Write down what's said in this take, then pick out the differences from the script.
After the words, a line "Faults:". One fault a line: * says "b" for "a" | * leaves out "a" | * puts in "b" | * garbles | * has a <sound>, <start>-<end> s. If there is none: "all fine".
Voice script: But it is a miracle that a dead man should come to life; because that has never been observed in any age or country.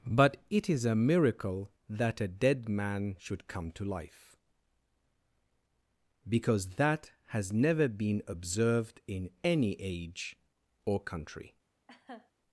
But it is a miracle that a dead man should come to life; because that has never been observed in any age or country.
Faults:
* has a laugh, 11.9-12.3 s